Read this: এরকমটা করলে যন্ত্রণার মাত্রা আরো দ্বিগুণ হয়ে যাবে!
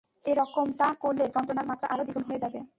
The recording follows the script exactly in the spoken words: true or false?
true